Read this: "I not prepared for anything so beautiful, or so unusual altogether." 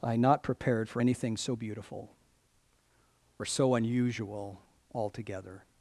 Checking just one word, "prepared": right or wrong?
right